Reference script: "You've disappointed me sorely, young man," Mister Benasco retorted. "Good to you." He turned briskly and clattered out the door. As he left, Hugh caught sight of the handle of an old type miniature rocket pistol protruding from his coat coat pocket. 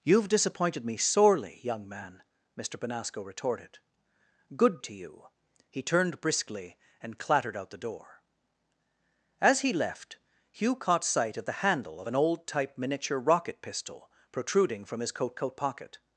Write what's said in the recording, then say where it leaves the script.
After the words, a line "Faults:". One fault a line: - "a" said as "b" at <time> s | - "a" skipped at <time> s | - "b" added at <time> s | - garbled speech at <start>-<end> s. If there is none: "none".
"You've disappointed me sorely, young man," Mister Benasco retorted. "Good to you." He turned briskly and clattered out the door. As he left, Hugh caught sight of the handle of an old type miniature rocket pistol protruding from his coat coat pocket.
Faults:
none